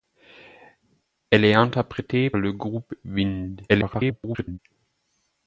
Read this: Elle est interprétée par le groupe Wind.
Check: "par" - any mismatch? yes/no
yes